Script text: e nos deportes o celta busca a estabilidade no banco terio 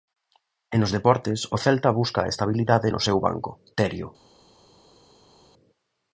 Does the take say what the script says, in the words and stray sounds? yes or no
no